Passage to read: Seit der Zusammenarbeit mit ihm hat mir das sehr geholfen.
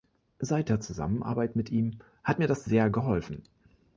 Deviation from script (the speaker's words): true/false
false